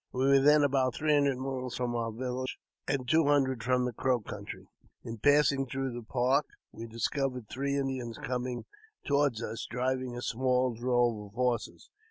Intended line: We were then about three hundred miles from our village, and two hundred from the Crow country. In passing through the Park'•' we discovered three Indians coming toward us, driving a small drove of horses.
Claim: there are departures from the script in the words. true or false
false